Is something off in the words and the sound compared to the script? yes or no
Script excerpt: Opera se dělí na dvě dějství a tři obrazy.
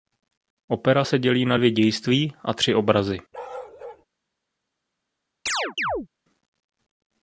yes